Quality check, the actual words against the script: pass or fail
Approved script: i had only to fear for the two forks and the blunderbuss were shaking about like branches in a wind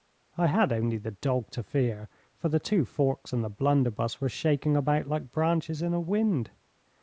fail